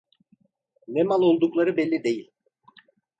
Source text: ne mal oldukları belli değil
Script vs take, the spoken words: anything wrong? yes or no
no